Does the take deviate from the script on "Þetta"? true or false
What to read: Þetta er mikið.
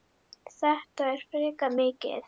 false